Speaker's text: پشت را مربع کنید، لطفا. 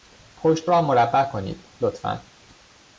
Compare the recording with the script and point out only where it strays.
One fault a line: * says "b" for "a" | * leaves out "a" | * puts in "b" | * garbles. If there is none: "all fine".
all fine